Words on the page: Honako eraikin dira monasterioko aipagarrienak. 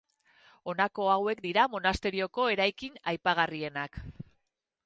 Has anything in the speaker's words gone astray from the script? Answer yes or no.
yes